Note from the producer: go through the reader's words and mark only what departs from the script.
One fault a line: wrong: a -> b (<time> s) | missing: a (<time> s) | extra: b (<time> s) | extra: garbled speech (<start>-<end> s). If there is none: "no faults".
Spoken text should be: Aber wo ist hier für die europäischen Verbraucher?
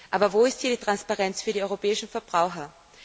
extra: die Transparenz (0.7 s)